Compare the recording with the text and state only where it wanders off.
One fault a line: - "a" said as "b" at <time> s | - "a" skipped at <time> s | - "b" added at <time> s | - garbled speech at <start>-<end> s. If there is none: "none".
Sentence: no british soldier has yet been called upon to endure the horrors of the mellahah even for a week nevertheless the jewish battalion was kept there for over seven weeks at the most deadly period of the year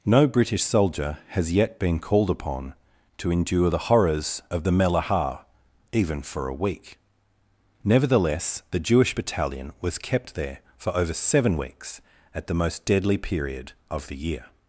none